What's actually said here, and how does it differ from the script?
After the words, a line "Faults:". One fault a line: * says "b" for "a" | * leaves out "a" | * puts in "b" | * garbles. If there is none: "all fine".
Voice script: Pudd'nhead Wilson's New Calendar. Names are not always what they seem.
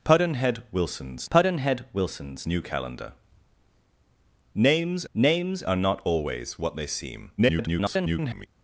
Pudd'nhead Wilson's pudd'nhead Wilson's New Calendar. Names names are not always what they seem. [garbled]
Faults:
* puts in "pudd'nhead Wilson's"
* puts in "names"
* garbles